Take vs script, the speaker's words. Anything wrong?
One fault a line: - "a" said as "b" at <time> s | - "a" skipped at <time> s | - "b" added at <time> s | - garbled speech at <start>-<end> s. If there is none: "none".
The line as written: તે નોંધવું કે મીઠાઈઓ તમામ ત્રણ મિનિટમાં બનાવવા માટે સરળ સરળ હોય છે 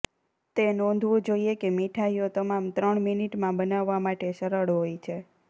- "જોઇએ" added at 1.3 s
- "સરળ" skipped at 4.7 s